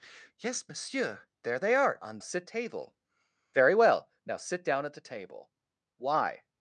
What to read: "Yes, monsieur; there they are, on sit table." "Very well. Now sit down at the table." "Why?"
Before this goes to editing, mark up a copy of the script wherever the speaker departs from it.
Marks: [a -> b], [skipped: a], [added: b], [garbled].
"Yes, monsieur; there they are, on sit table." "Very well. Now sit down at the table." "Why?"